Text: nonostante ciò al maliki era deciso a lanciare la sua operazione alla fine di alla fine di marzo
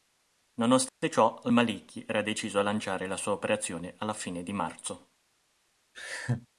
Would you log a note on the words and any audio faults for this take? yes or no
yes